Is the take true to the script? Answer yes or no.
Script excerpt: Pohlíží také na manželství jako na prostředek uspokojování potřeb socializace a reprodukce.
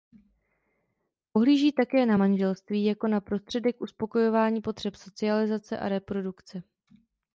yes